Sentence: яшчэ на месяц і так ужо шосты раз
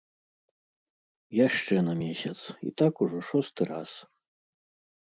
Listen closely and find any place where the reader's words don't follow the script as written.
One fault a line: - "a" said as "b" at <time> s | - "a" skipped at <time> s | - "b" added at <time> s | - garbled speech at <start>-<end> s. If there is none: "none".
none